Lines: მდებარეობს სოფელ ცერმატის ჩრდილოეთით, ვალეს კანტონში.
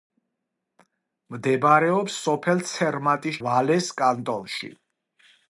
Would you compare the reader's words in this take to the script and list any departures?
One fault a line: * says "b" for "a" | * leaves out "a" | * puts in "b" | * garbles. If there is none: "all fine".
* leaves out "ჩრდილოეთით"